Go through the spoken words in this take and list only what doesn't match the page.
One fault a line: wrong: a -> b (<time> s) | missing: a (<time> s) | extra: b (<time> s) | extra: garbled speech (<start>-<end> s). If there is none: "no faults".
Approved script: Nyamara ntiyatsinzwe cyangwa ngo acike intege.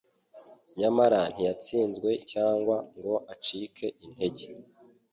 no faults